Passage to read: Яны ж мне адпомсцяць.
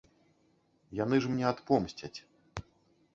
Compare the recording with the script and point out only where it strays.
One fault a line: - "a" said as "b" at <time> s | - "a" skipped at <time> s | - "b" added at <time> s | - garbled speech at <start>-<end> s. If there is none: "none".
none